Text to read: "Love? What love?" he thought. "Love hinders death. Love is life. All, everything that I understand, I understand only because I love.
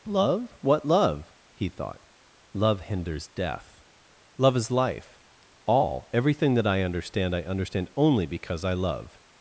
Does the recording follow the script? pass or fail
pass